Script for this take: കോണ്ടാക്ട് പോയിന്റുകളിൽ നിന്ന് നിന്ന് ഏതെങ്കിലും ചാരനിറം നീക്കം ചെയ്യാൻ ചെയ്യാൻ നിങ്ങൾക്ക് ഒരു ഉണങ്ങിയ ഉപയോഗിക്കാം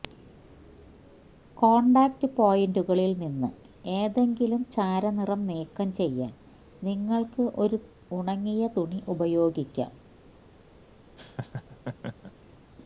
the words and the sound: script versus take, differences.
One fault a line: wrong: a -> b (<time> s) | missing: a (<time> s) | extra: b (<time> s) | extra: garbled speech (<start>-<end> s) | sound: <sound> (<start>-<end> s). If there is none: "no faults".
missing: നിന്ന് (3.5 s)
missing: ചെയ്യാൻ (6.3 s)
extra: തുണി (8.8 s)
sound: laugh (11.2-12.3 s)